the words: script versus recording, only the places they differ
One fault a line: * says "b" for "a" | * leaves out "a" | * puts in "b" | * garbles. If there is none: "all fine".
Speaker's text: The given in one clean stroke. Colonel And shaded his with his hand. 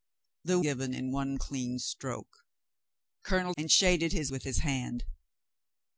all fine